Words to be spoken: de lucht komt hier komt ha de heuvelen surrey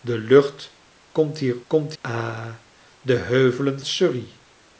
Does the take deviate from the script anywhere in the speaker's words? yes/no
no